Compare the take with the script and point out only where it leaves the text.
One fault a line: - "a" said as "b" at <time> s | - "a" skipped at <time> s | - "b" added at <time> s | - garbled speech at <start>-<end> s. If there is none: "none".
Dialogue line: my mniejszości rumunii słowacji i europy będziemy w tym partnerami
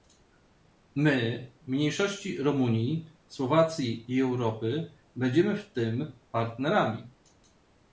none